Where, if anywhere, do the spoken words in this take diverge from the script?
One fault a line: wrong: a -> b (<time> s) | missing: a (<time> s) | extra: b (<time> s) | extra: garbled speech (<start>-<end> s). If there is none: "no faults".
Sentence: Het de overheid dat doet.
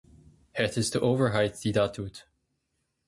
extra: is (0.8 s)
extra: die (1.6 s)